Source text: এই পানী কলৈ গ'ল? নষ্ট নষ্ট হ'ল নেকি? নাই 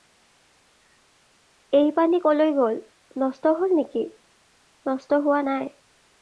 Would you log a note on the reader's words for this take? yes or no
yes